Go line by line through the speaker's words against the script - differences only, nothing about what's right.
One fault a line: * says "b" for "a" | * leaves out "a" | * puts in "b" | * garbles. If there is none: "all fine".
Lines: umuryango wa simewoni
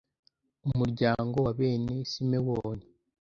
* puts in "bene"